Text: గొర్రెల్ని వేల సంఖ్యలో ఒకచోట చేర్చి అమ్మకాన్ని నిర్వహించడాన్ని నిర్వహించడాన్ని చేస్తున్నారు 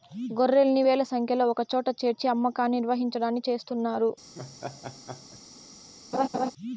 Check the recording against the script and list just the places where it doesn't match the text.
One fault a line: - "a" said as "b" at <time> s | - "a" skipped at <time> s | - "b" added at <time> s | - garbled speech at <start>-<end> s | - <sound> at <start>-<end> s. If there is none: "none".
- "నిర్వహించడాన్ని" skipped at 3.4 s
- laugh at 4.3-5.4 s
- laugh at 6.1-6.5 s